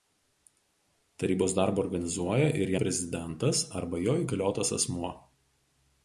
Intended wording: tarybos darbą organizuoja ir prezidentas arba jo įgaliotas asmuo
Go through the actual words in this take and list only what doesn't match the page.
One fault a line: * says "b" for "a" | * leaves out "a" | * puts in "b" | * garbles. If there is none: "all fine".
all fine